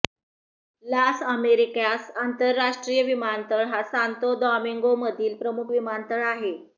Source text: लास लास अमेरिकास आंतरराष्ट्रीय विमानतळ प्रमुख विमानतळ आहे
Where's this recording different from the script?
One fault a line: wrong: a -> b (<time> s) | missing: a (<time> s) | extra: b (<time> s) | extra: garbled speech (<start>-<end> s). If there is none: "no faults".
missing: लास (1.2 s)
extra: हा सांतो दॉमिंगोमधील (3.6 s)